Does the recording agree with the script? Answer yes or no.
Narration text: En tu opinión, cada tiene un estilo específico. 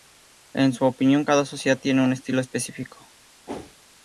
no